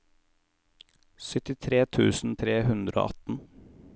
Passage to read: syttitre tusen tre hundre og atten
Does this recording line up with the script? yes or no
yes